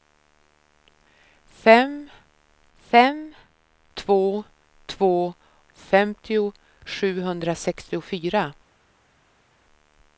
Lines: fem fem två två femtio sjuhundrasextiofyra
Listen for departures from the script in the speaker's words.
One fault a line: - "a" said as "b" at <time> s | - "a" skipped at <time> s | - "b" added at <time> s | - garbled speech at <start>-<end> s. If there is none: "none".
none